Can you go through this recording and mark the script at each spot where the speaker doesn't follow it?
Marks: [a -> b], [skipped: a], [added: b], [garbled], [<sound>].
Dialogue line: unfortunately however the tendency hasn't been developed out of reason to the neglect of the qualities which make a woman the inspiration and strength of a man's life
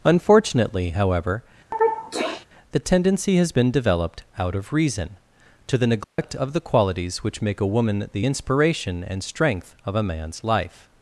unfortunately however [sneeze] the tendency [hasn't -> has] been developed out of reason to the neglect [dropout] of the qualities which make a woman the inspiration and strength of a man's life